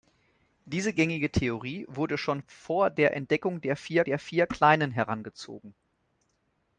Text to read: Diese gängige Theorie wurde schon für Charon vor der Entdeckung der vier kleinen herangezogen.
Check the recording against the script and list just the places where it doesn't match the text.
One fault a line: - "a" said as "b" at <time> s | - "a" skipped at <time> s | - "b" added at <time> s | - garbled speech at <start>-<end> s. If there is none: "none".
- "für Charon vor" said as "vor der Entdeckung" at 2.5 s
- "Entdeckung" said as "vier" at 3.8 s